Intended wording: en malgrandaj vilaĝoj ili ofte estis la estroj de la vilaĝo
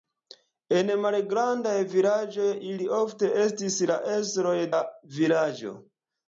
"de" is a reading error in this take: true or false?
true